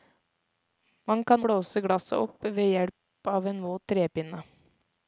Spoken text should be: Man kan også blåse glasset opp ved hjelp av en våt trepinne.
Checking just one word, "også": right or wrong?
wrong